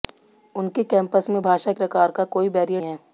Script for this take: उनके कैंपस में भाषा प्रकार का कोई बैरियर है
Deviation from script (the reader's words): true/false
false